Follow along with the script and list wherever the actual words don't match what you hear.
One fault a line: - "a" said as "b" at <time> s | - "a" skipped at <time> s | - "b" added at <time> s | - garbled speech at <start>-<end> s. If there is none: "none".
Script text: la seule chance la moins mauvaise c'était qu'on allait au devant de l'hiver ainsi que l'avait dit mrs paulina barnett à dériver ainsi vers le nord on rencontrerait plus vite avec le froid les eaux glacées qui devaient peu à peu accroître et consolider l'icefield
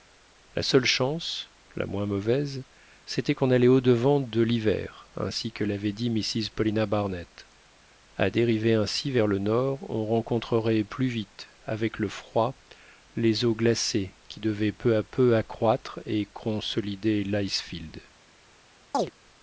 none